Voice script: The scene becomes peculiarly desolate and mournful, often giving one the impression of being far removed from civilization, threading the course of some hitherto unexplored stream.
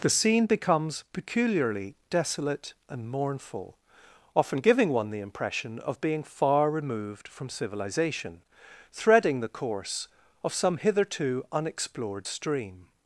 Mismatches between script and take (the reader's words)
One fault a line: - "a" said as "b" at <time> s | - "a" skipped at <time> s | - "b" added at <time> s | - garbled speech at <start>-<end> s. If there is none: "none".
none